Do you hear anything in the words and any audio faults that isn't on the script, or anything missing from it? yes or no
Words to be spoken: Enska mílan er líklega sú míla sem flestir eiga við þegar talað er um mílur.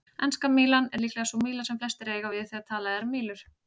no